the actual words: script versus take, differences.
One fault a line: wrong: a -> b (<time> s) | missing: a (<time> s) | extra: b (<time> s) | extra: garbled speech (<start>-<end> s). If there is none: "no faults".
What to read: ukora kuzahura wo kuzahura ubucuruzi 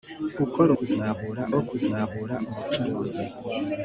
no faults